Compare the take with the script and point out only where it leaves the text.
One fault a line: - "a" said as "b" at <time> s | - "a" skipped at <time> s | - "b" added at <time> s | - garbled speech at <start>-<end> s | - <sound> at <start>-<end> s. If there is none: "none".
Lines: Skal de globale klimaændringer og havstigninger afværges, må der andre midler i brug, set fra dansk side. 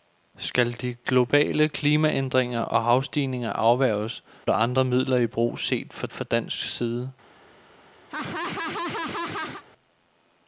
- "må" skipped at 4.2 s
- "fra" added at 6.1 s
- laugh at 8.1-9.6 s